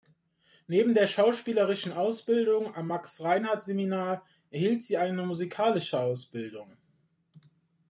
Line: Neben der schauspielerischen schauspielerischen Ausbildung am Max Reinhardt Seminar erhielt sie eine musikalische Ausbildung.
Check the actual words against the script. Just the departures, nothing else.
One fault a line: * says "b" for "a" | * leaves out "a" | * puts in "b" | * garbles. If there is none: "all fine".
* leaves out "schauspielerischen"